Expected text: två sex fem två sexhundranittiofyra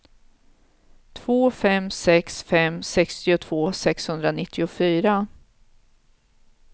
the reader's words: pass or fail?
fail